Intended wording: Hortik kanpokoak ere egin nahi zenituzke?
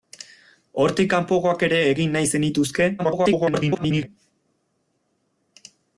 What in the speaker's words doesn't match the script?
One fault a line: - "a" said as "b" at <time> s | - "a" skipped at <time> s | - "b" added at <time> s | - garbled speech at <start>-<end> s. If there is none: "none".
- garbled speech at 3.0-4.1 s